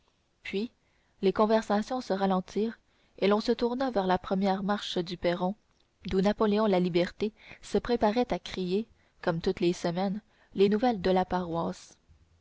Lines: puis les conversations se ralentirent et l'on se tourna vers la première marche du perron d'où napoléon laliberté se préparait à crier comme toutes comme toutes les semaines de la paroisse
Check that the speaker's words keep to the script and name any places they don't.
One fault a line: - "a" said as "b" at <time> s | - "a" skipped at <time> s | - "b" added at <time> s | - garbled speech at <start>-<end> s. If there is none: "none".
- "comme toutes" said as "les semaines" at 9.6 s
- "semaines" said as "nouvelles" at 10.7 s